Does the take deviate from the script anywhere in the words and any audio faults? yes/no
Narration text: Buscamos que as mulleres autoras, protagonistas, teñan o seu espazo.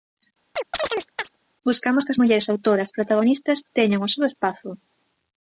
yes